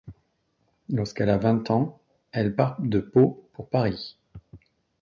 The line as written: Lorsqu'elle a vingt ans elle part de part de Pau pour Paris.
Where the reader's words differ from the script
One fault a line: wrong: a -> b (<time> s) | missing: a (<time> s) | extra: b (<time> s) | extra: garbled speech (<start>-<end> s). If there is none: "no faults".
missing: part de (3.0 s)